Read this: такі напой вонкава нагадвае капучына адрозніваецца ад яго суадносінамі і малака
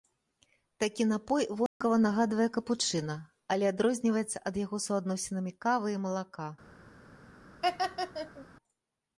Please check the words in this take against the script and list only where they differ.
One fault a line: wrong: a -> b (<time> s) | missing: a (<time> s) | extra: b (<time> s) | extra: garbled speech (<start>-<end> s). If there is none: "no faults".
extra: але (3.5 s)
extra: кавы (5.7 s)